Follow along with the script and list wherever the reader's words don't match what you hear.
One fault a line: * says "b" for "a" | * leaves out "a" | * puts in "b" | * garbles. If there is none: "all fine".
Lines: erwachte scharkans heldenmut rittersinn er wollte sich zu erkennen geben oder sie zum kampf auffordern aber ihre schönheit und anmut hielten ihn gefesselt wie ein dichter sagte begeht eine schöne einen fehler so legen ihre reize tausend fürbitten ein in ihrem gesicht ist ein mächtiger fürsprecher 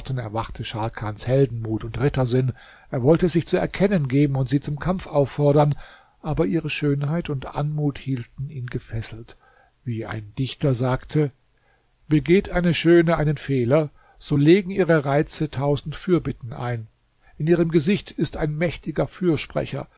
* puts in "und"
* says "und" for "oder"